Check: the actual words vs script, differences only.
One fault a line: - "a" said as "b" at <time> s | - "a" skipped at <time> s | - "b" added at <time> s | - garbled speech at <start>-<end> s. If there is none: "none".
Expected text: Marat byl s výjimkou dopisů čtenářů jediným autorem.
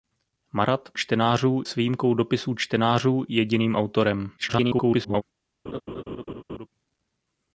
- "byl" said as "čtenářů" at 0.9 s
- garbled speech at 4.4-5.2 s